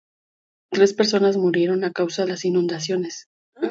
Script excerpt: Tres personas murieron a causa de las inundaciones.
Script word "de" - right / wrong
wrong